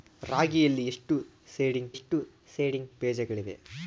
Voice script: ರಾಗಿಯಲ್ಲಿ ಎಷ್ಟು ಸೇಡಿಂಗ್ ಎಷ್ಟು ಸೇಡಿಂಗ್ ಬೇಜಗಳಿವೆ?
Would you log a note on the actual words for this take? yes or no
no